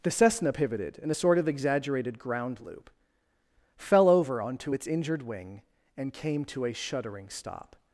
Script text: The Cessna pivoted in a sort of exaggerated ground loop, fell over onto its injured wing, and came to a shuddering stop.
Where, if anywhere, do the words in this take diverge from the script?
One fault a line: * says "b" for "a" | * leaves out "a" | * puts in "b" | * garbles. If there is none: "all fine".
all fine